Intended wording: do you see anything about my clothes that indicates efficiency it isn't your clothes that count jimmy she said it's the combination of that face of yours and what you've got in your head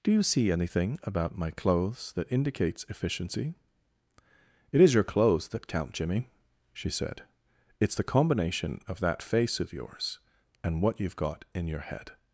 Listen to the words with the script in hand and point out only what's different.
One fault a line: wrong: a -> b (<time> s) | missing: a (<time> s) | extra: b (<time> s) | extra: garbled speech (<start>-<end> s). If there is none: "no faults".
wrong: isn't -> is (4.8 s)